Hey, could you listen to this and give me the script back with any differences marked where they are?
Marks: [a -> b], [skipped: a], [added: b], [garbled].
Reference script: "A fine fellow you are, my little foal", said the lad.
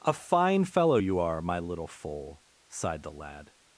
"A fine fellow you are, my little foal", [said -> sighed] the lad.